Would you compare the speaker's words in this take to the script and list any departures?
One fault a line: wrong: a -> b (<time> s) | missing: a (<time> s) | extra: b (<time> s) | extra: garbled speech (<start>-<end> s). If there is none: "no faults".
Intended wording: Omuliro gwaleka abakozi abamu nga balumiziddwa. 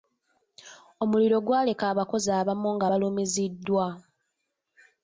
no faults